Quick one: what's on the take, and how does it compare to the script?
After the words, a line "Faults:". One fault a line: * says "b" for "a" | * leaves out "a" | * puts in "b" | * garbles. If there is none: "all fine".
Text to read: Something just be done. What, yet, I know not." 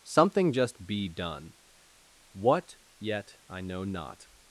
Something just be done. What, yet, I know not."
Faults:
all fine